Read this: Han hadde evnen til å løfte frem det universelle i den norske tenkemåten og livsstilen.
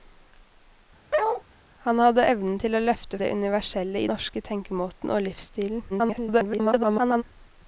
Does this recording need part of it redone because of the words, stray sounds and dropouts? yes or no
yes